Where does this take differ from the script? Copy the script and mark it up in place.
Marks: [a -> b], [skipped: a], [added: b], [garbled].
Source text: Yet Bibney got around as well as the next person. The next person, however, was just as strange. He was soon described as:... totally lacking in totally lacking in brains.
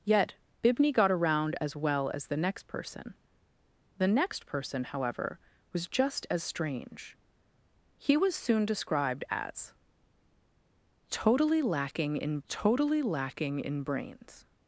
Yet Bibney got around as well as the next person. The next person, however, was just as strange. He was soon described as:... totally lacking in totally lacking in brains.